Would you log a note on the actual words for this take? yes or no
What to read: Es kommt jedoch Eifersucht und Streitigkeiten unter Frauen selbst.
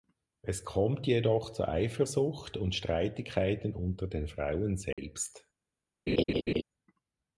yes